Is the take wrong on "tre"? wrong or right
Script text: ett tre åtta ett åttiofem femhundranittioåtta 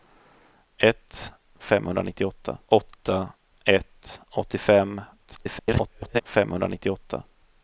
wrong